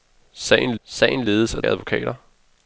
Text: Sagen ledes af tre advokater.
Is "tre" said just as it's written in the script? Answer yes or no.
no